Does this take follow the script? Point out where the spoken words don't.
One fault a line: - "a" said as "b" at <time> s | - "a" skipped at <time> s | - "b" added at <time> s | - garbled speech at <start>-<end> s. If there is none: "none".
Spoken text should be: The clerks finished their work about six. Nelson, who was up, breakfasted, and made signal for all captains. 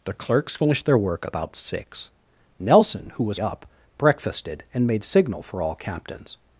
none